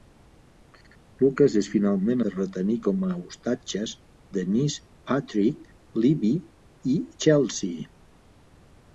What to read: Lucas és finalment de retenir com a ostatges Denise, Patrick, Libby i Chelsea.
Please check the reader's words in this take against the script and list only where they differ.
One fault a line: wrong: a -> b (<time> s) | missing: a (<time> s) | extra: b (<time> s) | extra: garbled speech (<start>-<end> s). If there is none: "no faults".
no faults